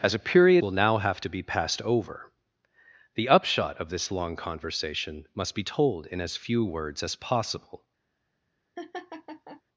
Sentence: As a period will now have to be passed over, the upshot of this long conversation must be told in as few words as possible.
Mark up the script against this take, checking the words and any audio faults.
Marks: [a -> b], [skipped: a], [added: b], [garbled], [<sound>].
As a period will now have to be passed over, the upshot of this long conversation must be told in as few words as possible. [laugh]